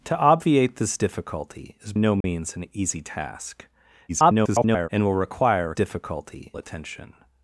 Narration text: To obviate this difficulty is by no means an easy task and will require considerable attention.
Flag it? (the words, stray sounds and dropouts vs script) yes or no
yes